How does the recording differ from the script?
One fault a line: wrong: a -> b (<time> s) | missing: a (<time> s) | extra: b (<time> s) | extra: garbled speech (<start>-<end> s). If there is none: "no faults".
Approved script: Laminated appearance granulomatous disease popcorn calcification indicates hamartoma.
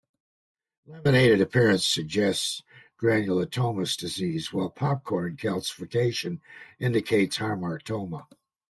extra: suggests (1.9 s)
extra: while (4.5 s)